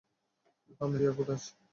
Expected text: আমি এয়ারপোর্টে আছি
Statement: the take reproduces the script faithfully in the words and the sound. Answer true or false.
true